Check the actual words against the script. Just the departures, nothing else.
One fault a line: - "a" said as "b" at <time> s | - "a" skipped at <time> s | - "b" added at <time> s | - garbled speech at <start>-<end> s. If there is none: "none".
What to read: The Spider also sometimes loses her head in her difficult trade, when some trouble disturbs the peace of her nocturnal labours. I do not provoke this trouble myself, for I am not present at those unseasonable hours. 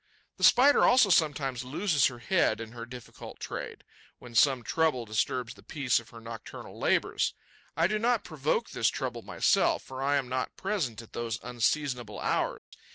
none